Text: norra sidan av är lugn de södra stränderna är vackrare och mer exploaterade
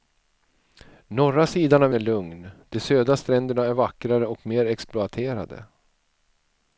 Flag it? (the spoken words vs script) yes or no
no